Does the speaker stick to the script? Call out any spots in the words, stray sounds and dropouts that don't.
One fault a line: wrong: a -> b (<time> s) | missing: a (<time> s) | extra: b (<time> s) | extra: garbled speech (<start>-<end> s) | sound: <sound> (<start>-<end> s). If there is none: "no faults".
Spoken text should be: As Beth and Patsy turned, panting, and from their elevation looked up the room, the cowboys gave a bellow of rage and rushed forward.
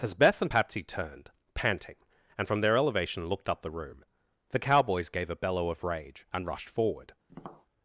sound: tap (7.3-7.7 s)